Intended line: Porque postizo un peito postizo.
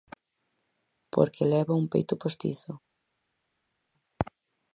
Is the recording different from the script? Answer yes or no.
yes